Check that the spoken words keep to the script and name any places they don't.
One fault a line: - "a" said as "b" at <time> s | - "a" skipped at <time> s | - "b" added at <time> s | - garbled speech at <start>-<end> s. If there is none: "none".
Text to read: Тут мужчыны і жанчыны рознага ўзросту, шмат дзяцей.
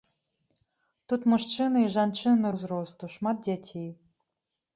- "рознага" skipped at 2.5 s